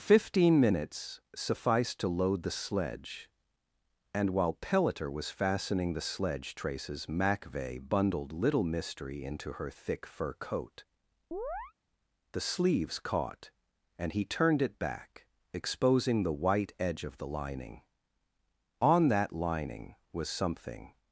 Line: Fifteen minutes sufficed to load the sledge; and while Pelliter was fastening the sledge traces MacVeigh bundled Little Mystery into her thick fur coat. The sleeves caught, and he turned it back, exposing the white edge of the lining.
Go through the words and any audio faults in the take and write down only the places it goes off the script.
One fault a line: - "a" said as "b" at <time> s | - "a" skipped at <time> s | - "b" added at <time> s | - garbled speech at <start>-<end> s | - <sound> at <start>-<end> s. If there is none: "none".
- chirp at 11.3-11.7 s
- "On that lining was something" added at 18.8 s